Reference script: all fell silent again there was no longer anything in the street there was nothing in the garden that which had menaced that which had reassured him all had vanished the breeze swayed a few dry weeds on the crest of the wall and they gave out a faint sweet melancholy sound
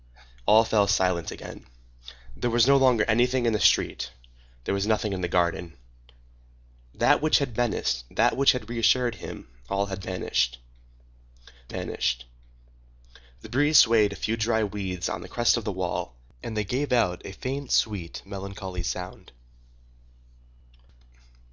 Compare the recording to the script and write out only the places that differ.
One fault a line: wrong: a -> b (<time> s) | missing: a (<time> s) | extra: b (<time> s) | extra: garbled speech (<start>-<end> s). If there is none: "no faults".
extra: vanished (11.7 s)